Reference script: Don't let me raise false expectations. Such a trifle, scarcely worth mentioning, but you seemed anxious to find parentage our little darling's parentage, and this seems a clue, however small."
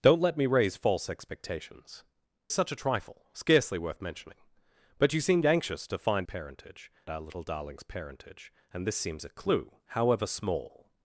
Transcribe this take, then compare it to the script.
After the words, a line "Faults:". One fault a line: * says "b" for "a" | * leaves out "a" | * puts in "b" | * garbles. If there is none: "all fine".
Don't let me raise false expectations. Such a trifle, scarcely worth mentioning, but you seemed anxious to find parentage our little darling's parentage, and this seems a clue, however small."
Faults:
all fine